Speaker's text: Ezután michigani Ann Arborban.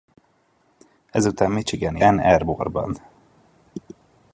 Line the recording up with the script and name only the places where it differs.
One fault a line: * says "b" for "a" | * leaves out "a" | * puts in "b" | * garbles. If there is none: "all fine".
all fine